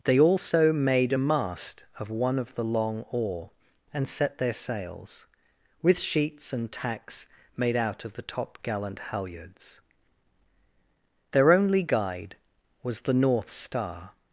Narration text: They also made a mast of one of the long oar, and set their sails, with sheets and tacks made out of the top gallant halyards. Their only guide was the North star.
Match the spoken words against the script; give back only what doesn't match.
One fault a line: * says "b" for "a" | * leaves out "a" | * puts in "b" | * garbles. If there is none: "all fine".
all fine